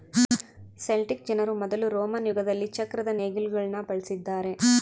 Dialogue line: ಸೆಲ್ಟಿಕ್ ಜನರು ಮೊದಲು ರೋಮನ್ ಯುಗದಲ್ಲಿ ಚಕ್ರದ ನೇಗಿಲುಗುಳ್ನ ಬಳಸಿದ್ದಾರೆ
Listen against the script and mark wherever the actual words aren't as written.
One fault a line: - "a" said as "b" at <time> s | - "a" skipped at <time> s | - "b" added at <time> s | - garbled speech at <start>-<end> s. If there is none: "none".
none